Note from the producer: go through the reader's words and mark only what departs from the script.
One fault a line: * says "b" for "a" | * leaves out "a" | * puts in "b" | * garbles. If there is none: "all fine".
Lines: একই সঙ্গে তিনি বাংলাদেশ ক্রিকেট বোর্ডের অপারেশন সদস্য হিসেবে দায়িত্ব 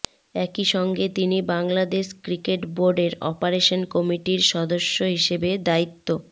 * puts in "কমিটির"